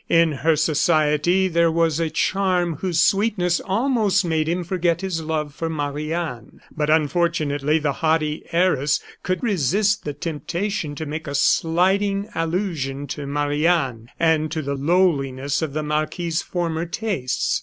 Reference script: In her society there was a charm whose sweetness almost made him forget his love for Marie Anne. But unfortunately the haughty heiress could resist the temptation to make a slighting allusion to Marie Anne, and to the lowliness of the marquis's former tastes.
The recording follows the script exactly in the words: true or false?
true